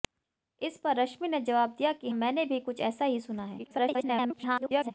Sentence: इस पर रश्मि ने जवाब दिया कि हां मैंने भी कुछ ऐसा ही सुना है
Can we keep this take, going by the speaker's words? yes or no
no